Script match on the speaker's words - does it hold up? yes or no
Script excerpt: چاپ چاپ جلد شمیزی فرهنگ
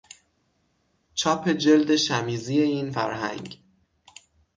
no